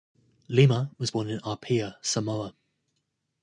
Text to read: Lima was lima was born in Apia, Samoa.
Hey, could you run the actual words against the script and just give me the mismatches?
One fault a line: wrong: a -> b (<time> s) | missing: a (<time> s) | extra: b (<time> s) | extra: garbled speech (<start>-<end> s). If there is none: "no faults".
missing: lima was (1.1 s)